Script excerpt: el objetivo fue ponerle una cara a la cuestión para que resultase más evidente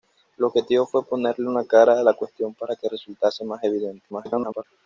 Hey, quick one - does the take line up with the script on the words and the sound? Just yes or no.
no